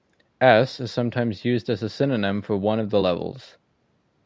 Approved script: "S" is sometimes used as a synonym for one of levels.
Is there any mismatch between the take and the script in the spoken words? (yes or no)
yes